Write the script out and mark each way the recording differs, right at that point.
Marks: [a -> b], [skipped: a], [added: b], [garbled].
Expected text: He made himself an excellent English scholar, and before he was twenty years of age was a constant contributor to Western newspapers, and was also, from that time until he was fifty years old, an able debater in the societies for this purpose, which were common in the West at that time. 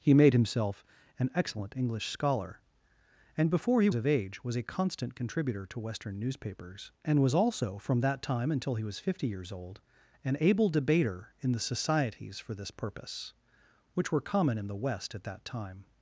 He made himself an excellent English scholar, and before he [skipped: was twenty years] of age was a constant contributor to Western newspapers, and was also, from that time until he was fifty years old, an able debater in the societies for this purpose, which were common in the West at that time.